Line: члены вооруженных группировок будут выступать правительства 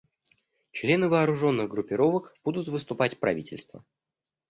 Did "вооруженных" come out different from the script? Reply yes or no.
no